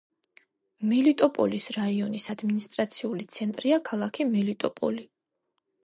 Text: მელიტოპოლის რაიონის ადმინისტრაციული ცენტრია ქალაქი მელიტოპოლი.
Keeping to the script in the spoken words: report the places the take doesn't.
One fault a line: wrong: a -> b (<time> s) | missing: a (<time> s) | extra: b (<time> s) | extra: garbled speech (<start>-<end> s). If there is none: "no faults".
no faults